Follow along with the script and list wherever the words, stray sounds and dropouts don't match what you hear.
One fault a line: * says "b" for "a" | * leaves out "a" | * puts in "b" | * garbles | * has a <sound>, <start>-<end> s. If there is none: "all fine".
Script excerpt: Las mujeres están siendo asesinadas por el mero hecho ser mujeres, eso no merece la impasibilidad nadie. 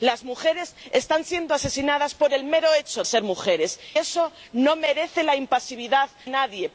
all fine